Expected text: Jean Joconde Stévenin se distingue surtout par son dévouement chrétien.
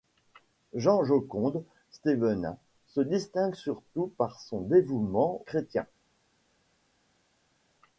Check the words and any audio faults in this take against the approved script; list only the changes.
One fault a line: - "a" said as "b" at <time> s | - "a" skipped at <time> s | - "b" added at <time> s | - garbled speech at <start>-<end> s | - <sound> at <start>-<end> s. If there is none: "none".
none